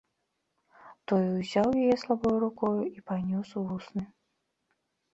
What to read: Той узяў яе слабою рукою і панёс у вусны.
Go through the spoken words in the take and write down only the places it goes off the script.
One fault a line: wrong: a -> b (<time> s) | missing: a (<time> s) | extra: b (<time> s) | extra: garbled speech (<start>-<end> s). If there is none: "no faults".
no faults